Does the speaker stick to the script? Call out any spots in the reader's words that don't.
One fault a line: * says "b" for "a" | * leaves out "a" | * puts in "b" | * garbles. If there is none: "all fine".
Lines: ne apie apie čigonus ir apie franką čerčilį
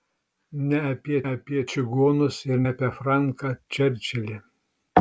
all fine